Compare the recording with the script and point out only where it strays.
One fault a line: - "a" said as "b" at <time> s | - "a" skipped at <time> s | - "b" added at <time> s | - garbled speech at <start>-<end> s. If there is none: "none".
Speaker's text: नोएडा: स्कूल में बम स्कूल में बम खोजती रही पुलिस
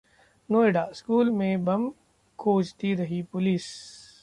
- "स्कूल में बम" skipped at 1.9 s